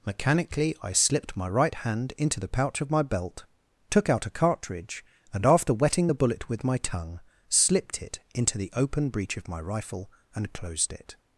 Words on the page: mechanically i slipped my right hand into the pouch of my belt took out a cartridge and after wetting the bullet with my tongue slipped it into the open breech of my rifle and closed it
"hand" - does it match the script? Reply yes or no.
yes